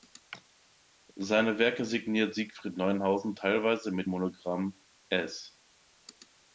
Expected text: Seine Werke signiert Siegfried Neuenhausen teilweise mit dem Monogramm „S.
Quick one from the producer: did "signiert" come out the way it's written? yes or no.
yes